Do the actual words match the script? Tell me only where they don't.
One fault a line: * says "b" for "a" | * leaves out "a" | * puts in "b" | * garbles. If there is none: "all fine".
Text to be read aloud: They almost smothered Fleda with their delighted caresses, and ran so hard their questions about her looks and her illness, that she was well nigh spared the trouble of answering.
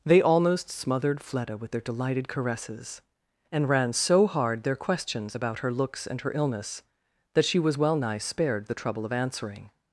all fine